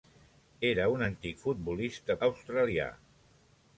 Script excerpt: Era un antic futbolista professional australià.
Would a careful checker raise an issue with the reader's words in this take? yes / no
yes